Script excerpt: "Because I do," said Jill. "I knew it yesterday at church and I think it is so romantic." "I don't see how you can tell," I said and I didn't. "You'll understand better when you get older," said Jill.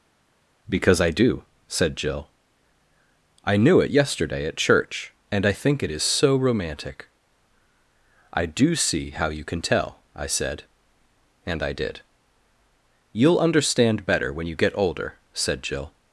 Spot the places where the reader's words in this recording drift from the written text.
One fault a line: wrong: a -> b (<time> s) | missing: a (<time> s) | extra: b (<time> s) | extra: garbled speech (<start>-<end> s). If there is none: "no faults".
wrong: don't -> do (8.5 s)
wrong: didn't -> did (11.7 s)